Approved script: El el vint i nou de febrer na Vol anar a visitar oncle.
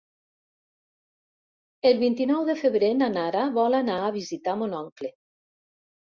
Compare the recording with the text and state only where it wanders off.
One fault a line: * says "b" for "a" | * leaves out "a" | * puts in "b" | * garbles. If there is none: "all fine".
* leaves out "el"
* puts in "Nara"
* puts in "mon"